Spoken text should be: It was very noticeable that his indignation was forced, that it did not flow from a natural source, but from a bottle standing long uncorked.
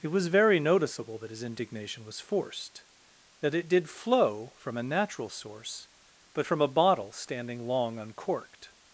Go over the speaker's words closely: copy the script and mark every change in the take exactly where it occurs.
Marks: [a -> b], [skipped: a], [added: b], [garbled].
It was very noticeable that his indignation was forced, that it did [skipped: not] flow from a natural source, but from a bottle standing long uncorked.